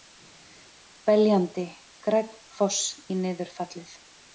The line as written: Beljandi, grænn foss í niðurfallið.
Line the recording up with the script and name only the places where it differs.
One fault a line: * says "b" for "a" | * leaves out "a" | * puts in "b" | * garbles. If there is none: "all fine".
all fine